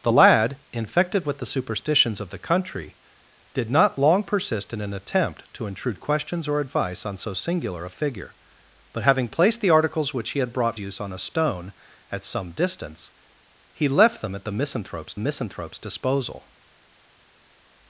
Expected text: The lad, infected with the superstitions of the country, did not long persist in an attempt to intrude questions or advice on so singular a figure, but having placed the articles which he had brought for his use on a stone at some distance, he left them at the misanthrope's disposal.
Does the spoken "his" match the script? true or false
false